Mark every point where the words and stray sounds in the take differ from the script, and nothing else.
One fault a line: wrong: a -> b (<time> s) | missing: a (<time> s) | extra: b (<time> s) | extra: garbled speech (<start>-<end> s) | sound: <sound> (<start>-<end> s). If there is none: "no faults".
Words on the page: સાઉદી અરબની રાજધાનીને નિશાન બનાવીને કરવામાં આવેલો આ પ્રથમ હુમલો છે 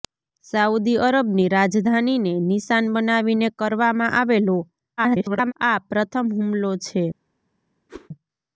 extra: garbled speech (5.0-5.5 s)
sound: whoosh (7.9-8.1 s)